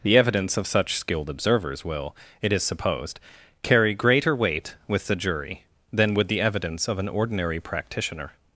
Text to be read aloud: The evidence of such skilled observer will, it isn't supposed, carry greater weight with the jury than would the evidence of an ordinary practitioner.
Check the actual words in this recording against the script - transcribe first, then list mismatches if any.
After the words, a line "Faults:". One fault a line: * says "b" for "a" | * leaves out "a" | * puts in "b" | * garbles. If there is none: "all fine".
The evidence of such skilled observers will, it is supposed, carry greater weight with the jury than would the evidence of an ordinary practitioner.
Faults:
* says "observers" for "observer"
* says "is" for "isn't"